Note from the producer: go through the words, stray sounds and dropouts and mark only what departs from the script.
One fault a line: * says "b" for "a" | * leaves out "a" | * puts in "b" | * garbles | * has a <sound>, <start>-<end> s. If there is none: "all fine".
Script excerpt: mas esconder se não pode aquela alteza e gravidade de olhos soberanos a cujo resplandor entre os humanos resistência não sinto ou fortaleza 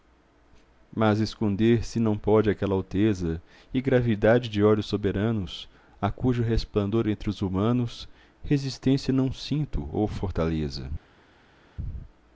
all fine